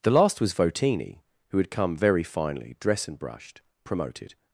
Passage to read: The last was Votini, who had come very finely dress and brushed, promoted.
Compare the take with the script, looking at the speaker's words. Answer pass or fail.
pass